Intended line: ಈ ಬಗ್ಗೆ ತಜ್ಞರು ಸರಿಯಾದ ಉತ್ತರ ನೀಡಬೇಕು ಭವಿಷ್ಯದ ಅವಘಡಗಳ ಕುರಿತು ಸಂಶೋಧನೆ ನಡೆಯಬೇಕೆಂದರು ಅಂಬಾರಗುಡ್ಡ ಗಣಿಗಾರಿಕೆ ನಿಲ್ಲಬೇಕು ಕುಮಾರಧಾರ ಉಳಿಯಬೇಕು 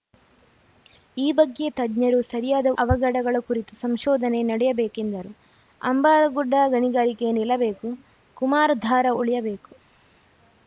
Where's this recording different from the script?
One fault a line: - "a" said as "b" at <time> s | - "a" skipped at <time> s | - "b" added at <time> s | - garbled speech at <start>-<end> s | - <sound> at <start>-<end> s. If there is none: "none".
- "ಉತ್ತರ ನೀಡಬೇಕು ಭವಿಷ್ಯದ" skipped at 2.7 s